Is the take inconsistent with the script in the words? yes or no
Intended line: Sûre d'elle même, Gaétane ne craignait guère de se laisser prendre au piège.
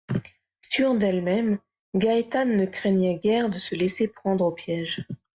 no